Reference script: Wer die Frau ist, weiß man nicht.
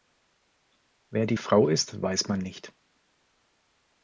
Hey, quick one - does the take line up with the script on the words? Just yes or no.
yes